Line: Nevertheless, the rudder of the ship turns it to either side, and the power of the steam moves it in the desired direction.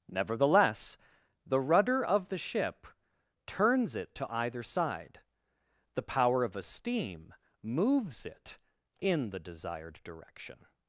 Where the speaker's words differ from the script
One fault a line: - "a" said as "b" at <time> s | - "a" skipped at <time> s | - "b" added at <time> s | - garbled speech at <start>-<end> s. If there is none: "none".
- "and" skipped at 5.2 s
- "the" said as "a" at 6.6 s